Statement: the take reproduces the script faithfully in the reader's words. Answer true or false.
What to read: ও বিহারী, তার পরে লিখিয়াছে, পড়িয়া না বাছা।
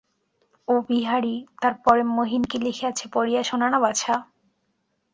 false